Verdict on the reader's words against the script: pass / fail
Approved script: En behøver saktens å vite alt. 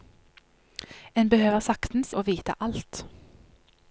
pass